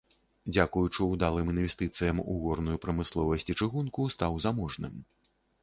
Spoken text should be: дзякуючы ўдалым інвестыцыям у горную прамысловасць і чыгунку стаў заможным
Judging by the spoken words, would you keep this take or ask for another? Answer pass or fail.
pass